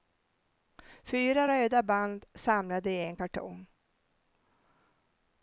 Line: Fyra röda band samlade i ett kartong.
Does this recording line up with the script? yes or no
no